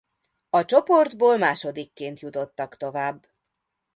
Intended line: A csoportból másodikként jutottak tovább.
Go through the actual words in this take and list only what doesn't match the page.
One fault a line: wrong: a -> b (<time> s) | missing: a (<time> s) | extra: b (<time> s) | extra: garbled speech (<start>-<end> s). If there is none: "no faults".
no faults